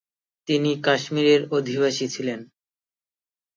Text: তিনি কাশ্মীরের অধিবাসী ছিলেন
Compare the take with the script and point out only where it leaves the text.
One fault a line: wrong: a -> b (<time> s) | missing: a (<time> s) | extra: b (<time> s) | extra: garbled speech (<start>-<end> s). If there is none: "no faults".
no faults